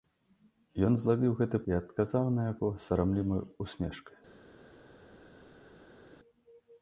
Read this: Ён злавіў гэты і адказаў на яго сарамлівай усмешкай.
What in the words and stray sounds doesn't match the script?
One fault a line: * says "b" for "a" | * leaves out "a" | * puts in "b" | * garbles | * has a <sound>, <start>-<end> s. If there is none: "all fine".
all fine